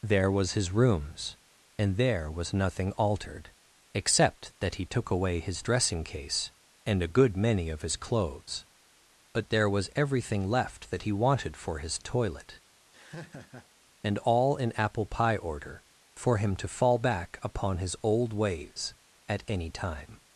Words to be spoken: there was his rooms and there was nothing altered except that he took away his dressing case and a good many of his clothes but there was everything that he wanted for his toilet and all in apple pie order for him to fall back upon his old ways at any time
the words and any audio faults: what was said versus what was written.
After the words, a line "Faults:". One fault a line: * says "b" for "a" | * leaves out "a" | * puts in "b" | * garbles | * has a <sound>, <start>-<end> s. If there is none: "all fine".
there was his rooms and there was nothing altered except that he took away his dressing case and a good many of his clothes but there was everything left that he wanted for his toilet and all in apple pie order for him to fall back upon his old ways at any time
Faults:
* puts in "left"
* has a laugh, 12.9-13.7 s